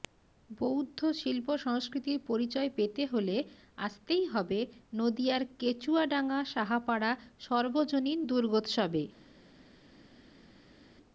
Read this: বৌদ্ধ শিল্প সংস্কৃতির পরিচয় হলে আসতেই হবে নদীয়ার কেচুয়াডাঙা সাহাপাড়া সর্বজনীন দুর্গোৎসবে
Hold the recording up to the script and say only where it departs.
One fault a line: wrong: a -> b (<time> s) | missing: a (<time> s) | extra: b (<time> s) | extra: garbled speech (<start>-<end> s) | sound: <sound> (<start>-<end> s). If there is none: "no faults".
extra: পেতে (2.8 s)